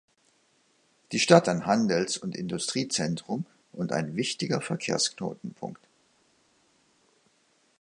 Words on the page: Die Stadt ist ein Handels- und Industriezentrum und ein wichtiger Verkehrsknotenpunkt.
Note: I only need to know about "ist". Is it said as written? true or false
false